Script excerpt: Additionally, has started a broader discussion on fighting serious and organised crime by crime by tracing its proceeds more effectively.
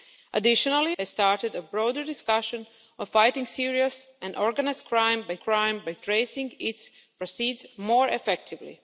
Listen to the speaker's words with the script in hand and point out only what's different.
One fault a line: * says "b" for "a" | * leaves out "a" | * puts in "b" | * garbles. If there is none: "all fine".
all fine